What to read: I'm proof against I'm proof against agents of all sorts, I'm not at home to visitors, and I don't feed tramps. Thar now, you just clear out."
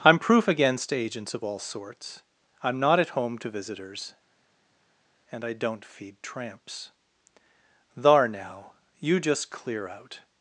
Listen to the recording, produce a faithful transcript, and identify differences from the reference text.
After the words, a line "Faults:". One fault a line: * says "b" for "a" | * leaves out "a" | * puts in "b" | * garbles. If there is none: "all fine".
I'm proof against agents of all sorts, I'm not at home to visitors, and I don't feed tramps. Thar now, you just clear out."
Faults:
* leaves out "I'm proof against"